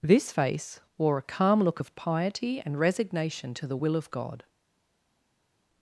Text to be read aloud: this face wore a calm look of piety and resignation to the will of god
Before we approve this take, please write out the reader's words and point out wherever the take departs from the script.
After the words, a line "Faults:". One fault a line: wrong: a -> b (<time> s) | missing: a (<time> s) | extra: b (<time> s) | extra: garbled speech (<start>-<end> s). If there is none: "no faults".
this face wore a calm look of piety and resignation to the will of god
Faults:
no faults